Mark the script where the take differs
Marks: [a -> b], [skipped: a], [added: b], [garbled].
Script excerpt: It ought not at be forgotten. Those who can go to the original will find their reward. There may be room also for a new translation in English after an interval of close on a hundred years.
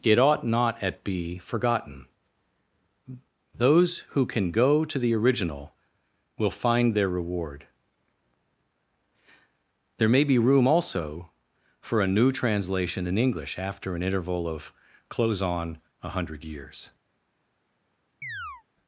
It ought not at be forgotten. Those who can go to the original will find their reward. There may be room also for a new translation in English after an interval of close on a hundred years.